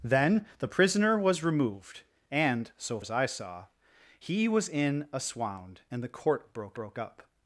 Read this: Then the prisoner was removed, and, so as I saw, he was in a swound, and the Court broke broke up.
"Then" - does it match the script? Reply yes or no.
yes